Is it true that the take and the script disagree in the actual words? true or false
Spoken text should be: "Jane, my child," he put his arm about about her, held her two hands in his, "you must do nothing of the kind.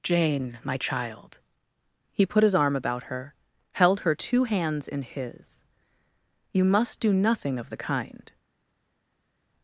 true